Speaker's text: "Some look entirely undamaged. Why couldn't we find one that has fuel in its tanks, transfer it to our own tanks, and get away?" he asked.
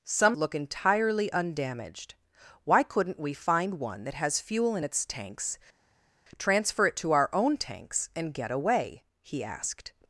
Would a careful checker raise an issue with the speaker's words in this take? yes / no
no